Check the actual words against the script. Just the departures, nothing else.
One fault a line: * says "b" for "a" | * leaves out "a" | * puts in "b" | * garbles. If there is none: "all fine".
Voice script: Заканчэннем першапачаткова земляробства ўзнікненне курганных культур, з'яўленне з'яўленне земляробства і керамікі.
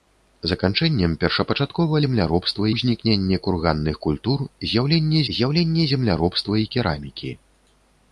all fine